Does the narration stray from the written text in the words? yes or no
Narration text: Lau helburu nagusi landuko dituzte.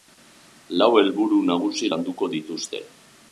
no